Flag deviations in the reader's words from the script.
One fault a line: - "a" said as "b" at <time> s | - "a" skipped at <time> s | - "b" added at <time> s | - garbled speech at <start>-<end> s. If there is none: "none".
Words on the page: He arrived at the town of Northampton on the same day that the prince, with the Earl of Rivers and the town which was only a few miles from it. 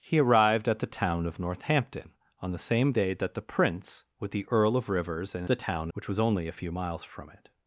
none